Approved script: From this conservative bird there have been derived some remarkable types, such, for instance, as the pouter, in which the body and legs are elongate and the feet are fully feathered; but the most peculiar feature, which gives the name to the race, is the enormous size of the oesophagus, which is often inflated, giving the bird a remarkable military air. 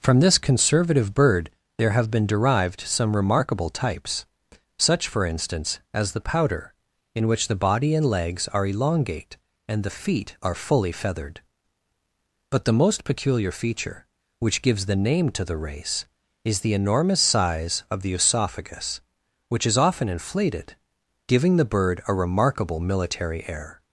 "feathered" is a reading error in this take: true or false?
false